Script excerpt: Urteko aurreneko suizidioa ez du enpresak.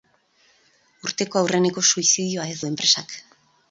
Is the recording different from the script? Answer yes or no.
no